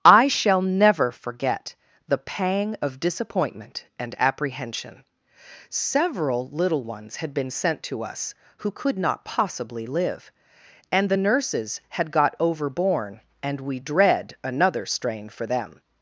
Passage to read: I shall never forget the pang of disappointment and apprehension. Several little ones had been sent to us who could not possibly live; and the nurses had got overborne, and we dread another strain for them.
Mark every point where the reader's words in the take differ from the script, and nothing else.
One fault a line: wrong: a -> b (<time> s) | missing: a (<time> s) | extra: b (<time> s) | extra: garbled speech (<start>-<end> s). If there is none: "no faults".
no faults